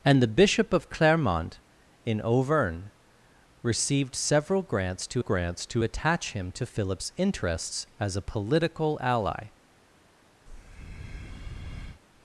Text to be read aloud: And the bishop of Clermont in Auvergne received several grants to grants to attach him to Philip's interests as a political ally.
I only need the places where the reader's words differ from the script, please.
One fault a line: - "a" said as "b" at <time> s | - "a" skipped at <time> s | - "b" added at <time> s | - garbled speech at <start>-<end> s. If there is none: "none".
none